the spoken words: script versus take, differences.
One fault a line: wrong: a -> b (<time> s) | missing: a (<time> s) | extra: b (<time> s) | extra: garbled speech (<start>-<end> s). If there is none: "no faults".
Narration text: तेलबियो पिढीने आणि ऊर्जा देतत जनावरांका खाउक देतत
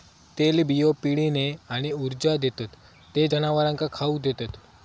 extra: ते (3.1 s)